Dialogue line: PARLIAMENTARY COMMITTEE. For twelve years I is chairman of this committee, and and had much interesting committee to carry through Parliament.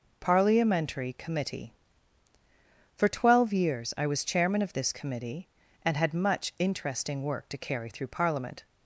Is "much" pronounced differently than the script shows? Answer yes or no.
no